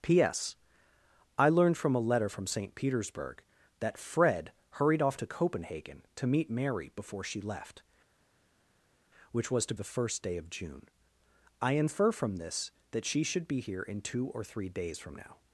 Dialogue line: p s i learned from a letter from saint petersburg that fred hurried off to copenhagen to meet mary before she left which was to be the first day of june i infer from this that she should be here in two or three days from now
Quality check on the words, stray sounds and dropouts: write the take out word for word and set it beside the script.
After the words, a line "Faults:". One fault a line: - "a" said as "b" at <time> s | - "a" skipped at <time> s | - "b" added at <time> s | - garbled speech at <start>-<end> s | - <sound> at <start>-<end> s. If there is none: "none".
p s i learned from a letter from saint petersburg that fred hurried off to copenhagen to meet mary before she left which was to the first day of june i infer from this that she should be here in two or three days from now
Faults:
- "be" skipped at 9.7 s